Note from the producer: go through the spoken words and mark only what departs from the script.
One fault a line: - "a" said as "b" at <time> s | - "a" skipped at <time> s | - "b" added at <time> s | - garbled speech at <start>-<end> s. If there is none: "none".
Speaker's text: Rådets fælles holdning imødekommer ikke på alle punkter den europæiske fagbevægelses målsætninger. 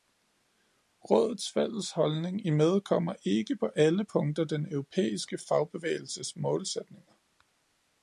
none